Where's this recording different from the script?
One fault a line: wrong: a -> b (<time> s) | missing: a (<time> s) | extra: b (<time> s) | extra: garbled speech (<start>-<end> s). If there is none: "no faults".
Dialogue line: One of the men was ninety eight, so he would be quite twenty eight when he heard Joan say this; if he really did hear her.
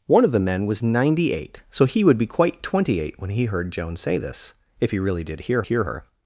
extra: hear (5.6 s)